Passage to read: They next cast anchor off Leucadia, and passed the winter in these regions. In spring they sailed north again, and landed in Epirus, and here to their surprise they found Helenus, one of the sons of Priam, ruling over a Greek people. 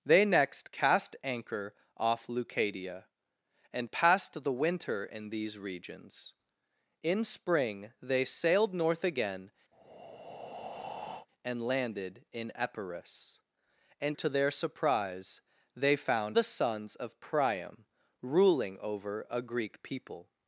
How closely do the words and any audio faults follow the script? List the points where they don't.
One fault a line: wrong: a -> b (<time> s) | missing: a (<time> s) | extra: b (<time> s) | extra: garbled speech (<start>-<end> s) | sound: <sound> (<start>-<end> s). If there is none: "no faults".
sound: breath (9.7-11.3 s)
missing: here (14.2 s)
missing: Helenus one of (16.4 s)